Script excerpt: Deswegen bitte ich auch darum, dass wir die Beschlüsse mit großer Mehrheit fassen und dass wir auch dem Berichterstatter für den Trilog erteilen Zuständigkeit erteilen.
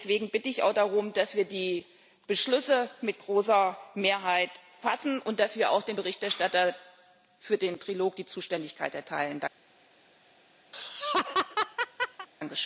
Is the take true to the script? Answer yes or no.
no